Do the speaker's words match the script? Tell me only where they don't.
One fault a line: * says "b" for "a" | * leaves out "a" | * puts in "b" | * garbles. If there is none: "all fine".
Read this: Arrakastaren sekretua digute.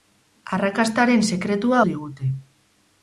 all fine